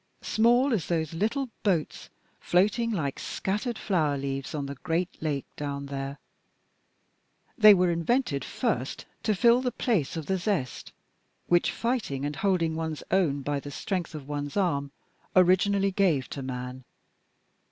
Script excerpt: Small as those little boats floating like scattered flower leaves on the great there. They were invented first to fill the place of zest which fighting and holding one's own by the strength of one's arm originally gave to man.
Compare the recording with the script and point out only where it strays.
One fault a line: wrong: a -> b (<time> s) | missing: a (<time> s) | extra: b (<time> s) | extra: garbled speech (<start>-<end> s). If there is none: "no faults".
extra: lake down (5.2 s)
extra: the (10.2 s)